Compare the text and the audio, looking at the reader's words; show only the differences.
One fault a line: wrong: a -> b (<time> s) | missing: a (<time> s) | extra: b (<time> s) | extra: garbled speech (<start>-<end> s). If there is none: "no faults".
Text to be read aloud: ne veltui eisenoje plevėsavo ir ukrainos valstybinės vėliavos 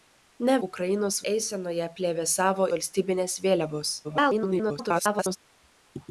wrong: veltui -> ukrainos (0.7 s)
missing: ir ukrainos (2.7 s)
extra: garbled speech (4.0-5.4 s)